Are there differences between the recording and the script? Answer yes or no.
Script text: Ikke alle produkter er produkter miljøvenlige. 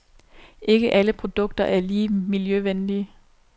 yes